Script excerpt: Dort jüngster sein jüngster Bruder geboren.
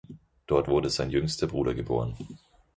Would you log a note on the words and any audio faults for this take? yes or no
yes